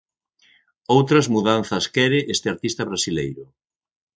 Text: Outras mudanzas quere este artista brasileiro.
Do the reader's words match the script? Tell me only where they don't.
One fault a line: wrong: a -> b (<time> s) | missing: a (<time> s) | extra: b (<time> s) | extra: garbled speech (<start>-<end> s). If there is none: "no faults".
no faults